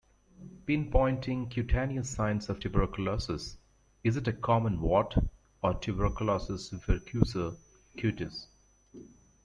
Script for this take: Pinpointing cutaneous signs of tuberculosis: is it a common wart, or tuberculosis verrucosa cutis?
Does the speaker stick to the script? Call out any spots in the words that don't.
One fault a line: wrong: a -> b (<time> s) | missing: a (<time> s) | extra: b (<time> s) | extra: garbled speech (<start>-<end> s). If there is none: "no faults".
no faults